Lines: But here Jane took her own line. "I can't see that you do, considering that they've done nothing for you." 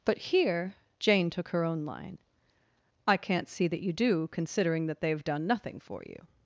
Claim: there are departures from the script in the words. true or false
false